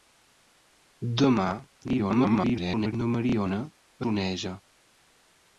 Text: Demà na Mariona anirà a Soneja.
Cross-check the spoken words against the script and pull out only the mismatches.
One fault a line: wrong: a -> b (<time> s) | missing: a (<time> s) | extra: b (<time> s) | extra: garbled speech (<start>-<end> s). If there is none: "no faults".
extra: garbled speech (1.9-2.9 s)
missing: anirà a (3.6 s)